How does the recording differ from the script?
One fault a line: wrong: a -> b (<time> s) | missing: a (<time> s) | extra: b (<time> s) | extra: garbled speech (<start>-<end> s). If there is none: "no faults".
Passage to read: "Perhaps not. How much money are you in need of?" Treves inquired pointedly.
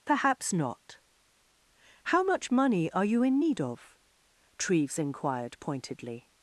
no faults